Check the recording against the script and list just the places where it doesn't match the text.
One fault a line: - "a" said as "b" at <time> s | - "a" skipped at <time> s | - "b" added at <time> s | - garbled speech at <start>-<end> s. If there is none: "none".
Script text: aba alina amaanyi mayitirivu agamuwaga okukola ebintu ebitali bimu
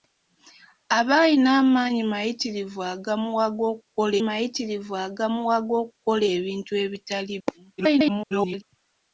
- "mayitirivu agamuwaga okukola" added at 4.3 s
- garbled speech at 7.8-8.6 s